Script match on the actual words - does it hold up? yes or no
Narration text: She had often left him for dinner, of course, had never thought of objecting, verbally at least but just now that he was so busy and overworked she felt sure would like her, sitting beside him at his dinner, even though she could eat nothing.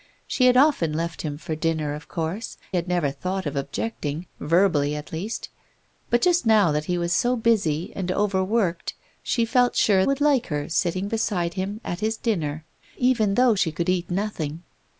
yes